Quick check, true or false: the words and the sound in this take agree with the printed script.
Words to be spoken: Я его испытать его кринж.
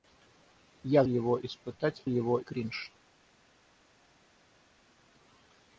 true